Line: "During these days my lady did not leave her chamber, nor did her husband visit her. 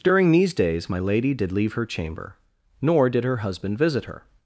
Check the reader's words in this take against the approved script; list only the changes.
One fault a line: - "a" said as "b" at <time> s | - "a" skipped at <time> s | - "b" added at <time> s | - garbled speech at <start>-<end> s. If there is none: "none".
- "not" skipped at 1.5 s